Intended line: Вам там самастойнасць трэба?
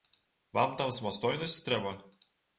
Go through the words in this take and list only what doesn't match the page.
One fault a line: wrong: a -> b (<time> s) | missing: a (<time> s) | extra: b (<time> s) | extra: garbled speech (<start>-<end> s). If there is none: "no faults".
no faults